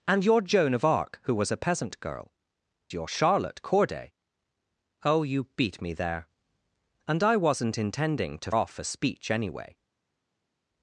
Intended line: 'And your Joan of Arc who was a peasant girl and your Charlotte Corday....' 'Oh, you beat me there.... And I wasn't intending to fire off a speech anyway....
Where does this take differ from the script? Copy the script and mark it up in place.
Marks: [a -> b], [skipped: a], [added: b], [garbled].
'And your Joan of Arc who was a peasant girl [skipped: and] your Charlotte Corday....' 'Oh, you beat me there.... And I wasn't intending to [skipped: fire] off a speech anyway....